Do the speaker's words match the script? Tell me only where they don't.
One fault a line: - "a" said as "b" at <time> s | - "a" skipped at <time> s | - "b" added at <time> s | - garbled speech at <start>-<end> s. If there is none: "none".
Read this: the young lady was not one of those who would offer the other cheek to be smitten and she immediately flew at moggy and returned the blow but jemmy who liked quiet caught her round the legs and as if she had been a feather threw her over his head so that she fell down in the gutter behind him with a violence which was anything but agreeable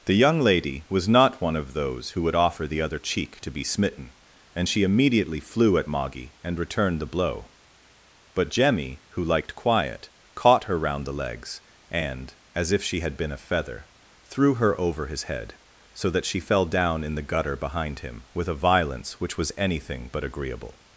none